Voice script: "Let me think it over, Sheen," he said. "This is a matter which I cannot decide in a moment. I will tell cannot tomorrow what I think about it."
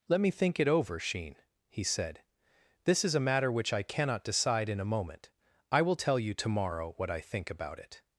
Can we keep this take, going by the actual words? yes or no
no